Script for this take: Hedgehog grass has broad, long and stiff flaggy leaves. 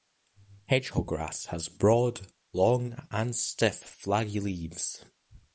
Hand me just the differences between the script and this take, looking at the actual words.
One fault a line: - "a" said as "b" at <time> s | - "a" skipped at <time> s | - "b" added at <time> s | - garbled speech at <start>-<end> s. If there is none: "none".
none